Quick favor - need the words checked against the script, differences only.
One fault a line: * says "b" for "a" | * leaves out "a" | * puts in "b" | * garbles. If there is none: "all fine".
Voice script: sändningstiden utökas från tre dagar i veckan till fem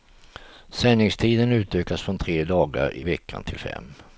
all fine